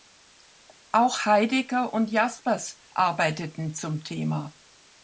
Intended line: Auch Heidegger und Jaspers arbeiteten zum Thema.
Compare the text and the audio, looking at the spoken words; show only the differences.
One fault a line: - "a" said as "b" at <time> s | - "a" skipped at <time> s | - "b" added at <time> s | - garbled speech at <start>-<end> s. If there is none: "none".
none